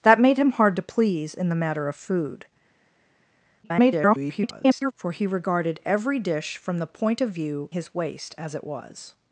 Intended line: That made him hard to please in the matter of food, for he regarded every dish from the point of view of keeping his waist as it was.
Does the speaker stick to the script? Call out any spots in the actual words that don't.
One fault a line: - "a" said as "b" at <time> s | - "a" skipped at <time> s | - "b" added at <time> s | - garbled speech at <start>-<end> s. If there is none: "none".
- garbled speech at 3.6-4.9 s
- "of keeping" skipped at 7.7 s